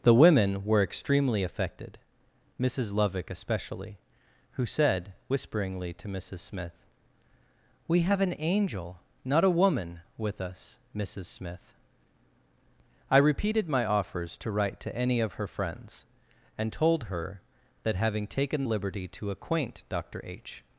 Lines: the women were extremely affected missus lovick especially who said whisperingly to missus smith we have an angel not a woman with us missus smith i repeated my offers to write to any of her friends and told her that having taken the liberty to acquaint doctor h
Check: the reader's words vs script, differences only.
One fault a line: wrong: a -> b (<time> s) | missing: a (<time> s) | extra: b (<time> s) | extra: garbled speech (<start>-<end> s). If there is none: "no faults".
missing: the (18.6 s)